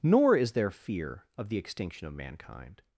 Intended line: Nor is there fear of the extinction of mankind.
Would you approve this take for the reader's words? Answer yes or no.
yes